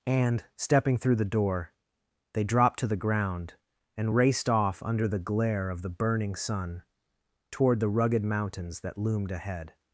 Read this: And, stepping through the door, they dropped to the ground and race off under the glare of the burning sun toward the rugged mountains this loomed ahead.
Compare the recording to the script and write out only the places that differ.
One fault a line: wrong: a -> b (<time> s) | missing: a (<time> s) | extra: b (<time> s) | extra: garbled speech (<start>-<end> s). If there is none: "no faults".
wrong: race -> raced (4.1 s)
wrong: this -> that (8.8 s)